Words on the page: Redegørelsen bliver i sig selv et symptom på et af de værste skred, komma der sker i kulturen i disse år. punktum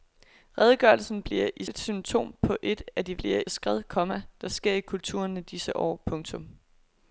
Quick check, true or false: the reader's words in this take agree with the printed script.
false